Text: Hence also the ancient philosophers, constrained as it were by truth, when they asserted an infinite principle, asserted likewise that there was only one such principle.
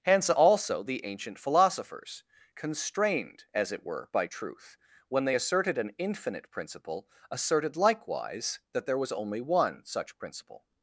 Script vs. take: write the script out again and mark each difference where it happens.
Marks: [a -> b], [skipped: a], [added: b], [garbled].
Hence also the ancient philosophers, constrained as it were by truth, when they asserted an infinite principle, asserted likewise that there was only one such principle.